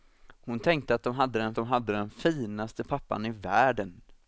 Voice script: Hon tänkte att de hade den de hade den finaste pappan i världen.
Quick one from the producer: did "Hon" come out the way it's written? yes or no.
yes